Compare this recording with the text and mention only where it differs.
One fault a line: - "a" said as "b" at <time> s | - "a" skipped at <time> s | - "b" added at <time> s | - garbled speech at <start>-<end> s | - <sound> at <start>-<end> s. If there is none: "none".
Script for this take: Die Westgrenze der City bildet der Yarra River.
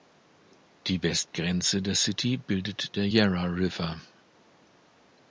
none